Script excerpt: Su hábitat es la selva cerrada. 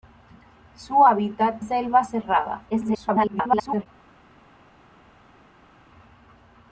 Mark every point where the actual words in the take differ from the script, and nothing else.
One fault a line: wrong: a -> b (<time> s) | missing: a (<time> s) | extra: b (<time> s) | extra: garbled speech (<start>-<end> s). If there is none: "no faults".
missing: es la (1.6 s)
extra: garbled speech (2.7-3.9 s)